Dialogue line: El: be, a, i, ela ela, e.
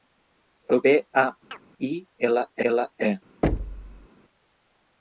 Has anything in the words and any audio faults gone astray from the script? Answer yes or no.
yes